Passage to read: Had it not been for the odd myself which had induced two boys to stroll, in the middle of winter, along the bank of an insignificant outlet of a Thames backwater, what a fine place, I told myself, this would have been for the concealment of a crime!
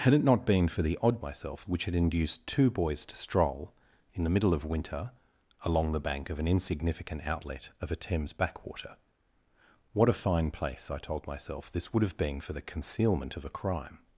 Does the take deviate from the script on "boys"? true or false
false